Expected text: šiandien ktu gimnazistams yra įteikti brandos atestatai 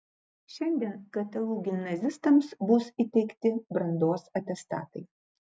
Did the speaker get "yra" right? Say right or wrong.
wrong